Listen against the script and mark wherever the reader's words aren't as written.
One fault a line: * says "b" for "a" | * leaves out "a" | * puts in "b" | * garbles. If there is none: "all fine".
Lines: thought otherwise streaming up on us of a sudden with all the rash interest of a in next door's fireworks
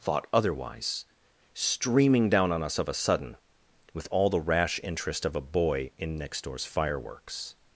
* says "down" for "up"
* puts in "boy"